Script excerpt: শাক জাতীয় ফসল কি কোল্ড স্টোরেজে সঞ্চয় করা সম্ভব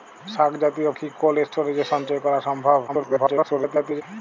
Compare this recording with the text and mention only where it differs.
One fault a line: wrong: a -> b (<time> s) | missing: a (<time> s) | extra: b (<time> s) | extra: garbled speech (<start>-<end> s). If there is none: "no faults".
missing: ফসল (0.9 s)
extra: garbled speech (2.9-4.0 s)